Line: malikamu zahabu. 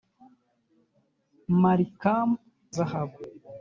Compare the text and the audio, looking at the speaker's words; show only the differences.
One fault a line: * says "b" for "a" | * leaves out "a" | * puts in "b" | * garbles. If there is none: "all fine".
all fine